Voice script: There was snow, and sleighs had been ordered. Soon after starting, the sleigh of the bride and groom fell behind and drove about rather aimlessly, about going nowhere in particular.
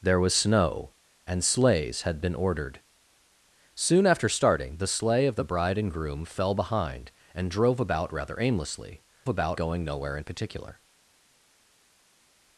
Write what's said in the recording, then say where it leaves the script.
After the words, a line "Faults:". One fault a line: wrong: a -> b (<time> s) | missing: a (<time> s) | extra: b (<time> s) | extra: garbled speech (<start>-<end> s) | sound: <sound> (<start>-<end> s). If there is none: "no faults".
There was snow, and sleighs had been ordered. Soon after starting, the sleigh of the bride and groom fell behind and drove about rather aimlessly, about going nowhere in particular.
Faults:
no faults